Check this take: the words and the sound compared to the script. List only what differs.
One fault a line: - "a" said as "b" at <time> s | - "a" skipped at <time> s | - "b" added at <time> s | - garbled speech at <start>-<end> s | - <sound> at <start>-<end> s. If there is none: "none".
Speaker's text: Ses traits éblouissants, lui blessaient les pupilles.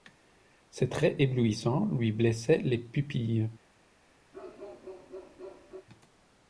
- bark at 4.3-5.9 s